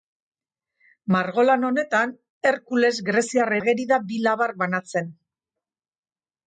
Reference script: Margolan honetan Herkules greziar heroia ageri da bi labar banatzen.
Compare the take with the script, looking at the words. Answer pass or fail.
fail